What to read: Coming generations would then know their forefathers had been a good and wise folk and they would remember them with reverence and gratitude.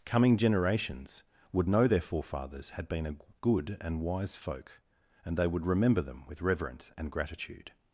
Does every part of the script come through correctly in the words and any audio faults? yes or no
no